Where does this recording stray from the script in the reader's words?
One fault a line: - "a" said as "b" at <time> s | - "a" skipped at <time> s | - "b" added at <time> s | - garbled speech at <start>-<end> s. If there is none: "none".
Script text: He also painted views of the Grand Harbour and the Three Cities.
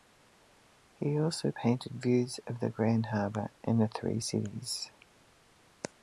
none